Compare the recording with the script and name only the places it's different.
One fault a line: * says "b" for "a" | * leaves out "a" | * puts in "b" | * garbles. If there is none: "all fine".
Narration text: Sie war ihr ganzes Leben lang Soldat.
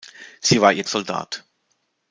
* leaves out "ganzes Leben lang"